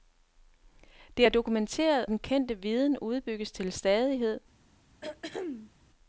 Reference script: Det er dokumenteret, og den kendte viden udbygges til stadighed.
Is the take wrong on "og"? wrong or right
wrong